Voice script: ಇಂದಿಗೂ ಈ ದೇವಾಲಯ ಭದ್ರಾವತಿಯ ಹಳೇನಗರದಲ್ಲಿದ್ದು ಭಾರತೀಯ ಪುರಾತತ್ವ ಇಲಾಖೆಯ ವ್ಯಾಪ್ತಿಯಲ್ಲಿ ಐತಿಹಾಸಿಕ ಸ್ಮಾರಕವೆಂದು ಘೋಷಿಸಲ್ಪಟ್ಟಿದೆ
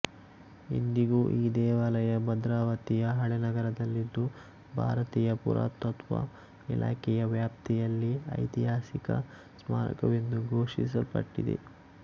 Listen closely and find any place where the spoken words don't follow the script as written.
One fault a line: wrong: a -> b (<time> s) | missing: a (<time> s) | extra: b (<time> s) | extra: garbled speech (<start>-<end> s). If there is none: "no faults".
no faults